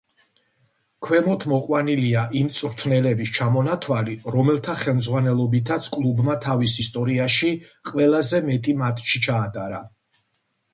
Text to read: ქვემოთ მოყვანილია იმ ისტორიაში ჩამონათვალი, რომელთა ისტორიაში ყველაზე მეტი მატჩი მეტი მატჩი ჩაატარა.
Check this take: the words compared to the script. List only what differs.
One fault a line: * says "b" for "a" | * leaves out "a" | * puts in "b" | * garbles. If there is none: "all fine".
* says "მწვრთნელების" for "ისტორიაში"
* puts in "ხელმძღვანელობითაც კლუბმა თავის"
* leaves out "მეტი მატჩი"